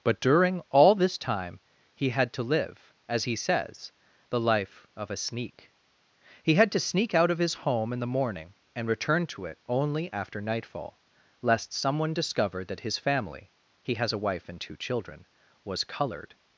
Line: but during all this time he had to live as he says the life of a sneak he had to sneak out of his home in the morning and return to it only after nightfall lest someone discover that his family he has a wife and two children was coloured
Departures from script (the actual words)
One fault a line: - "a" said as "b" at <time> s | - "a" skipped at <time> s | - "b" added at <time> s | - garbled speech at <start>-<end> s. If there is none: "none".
none